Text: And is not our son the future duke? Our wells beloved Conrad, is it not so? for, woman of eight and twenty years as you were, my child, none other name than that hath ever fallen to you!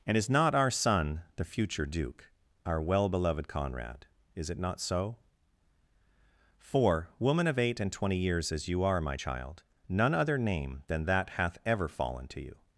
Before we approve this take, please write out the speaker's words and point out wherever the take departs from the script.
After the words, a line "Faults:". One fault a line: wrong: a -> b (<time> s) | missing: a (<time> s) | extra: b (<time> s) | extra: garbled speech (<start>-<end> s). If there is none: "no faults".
And is not our son the future duke? Our well beloved Conrad, is it not so? for, woman of eight and twenty years as you are, my child, none other name than that hath ever fallen to you!
Faults:
wrong: wells -> well (2.8 s)
wrong: were -> are (8.8 s)